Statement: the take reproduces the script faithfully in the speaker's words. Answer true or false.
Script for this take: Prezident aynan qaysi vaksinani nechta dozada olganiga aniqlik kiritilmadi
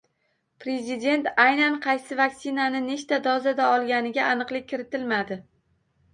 true